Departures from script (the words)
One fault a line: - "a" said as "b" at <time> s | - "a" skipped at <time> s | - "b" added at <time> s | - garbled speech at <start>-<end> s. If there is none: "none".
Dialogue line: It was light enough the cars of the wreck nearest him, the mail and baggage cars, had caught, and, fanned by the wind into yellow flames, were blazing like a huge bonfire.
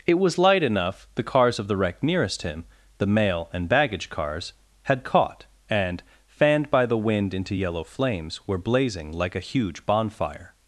none